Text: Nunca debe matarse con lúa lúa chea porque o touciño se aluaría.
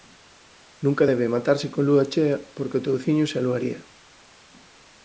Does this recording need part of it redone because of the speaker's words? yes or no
yes